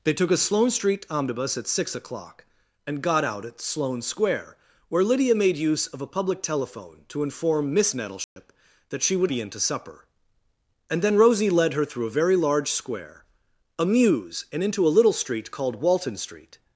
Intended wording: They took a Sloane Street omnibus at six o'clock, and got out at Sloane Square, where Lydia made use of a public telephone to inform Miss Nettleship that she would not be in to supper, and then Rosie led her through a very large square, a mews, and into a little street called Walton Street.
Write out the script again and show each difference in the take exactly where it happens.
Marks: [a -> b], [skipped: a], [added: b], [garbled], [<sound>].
They took a Sloane Street omnibus at six o'clock, and got out at Sloane Square, where Lydia made use of a public telephone to inform Miss Nettleship [dropout] that she would [skipped: not] be in to supper, and then Rosie led her through a very large square, a mews, and into a little street called Walton Street.